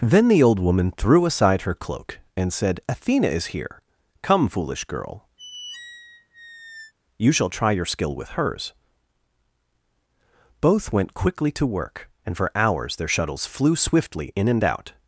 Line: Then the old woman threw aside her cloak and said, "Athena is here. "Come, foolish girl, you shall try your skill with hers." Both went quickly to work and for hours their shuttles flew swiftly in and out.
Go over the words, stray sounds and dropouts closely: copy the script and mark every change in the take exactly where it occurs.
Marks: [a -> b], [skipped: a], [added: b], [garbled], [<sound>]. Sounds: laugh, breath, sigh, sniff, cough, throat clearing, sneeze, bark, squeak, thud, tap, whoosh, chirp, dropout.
Then the old woman threw aside her cloak and said, "Athena is here. "Come, foolish girl, [squeak] you shall try your skill with hers." Both went quickly to work and for hours their shuttles flew swiftly in and out.